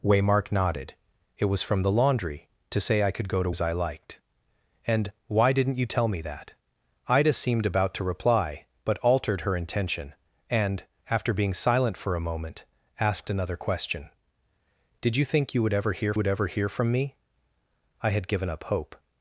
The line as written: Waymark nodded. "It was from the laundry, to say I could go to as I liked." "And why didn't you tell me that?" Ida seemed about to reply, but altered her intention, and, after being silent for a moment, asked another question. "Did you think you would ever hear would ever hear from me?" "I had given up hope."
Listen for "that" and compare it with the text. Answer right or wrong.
right